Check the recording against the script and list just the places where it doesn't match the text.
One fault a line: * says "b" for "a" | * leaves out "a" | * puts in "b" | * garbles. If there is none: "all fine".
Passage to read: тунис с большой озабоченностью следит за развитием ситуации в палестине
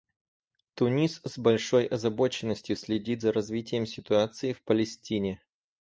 all fine